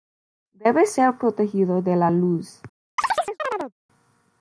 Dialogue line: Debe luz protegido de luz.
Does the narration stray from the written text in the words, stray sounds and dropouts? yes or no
yes